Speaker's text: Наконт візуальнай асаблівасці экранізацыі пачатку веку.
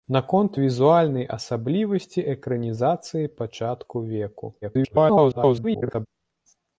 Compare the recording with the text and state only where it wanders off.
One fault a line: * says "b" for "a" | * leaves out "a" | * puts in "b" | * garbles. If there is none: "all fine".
* garbles